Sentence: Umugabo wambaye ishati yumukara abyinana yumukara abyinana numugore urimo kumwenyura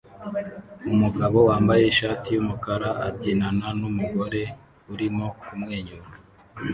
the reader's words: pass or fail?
fail